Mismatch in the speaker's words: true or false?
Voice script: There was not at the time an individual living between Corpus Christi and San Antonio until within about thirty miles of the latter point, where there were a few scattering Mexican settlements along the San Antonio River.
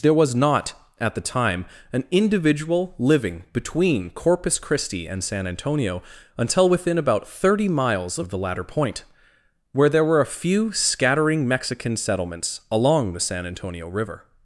false